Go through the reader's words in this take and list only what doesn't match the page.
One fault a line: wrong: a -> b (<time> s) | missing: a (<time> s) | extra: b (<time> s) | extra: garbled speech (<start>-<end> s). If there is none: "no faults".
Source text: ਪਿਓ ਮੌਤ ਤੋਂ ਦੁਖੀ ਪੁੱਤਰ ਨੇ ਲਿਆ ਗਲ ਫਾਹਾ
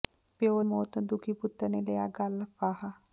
no faults